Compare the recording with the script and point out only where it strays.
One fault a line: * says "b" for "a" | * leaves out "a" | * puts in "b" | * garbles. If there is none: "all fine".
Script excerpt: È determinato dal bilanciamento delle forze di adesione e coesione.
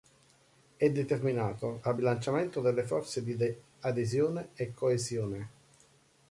all fine